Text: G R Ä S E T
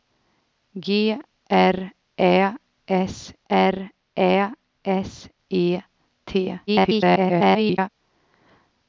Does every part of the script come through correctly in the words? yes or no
no